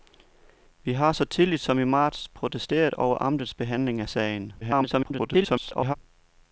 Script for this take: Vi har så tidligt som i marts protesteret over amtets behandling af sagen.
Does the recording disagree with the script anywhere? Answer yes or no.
yes